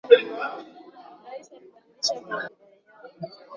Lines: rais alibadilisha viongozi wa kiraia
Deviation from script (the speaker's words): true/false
true